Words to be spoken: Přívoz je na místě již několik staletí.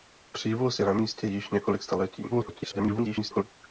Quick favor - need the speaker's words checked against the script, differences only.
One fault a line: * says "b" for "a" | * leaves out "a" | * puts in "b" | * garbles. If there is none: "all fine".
* garbles